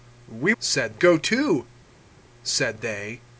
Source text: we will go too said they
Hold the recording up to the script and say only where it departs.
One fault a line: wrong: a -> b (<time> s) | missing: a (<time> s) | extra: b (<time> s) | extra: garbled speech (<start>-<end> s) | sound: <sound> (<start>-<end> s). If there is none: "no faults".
wrong: will -> said (0.6 s)